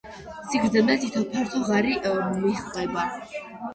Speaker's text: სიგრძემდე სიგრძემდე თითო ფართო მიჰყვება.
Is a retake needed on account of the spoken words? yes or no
yes